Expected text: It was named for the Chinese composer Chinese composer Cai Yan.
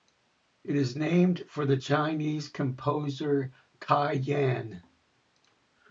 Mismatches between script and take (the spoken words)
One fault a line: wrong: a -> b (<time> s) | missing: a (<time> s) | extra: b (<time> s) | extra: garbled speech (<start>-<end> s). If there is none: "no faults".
wrong: was -> is (0.8 s)
missing: Chinese composer (3.5 s)